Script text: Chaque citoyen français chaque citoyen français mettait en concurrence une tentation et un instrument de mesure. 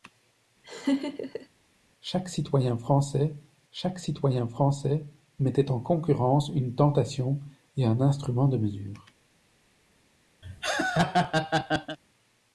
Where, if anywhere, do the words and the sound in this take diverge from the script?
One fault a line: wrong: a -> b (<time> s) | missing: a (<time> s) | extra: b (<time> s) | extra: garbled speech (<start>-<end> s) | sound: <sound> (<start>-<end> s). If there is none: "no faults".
sound: laugh (0.6-1.5 s)
sound: laugh (10.4-12.0 s)